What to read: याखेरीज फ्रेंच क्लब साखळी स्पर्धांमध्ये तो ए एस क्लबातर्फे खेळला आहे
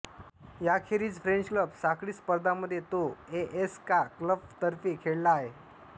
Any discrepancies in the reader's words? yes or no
yes